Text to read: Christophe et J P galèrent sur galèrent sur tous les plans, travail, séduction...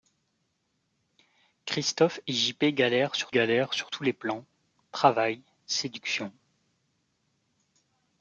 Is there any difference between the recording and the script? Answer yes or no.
no